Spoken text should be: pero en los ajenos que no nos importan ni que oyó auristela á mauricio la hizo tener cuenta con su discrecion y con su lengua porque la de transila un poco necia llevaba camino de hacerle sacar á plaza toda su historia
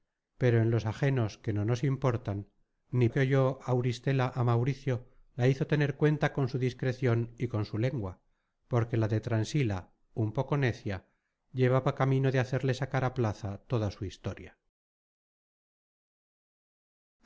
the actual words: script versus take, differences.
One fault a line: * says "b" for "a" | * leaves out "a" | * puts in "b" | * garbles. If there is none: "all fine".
all fine